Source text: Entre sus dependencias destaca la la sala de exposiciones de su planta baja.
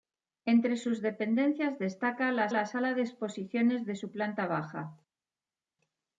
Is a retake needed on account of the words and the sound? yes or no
no